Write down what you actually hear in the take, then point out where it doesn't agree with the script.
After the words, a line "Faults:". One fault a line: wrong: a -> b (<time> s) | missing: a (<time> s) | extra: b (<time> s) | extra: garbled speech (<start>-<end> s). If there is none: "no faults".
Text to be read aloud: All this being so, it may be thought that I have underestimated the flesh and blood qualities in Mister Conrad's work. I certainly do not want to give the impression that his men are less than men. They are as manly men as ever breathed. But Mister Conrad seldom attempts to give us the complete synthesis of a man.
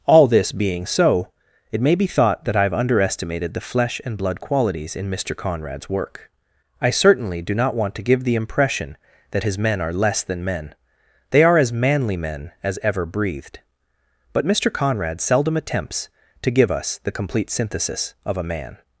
All this being so, it may be thought that I have underestimated the flesh and blood qualities in Mister Conrad's work. I certainly do not want to give the impression that his men are less than men. They are as manly men as ever breathed. But Mister Conrad seldom attempts to give us the complete synthesis of a man.
Faults:
no faults